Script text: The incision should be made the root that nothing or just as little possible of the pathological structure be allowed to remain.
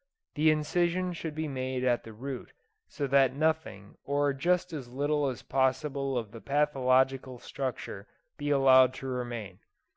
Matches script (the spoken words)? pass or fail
fail